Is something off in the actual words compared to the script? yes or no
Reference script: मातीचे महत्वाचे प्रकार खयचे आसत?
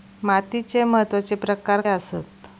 yes